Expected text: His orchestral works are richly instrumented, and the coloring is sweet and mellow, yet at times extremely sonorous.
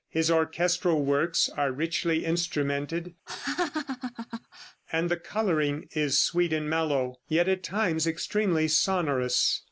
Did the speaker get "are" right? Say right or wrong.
right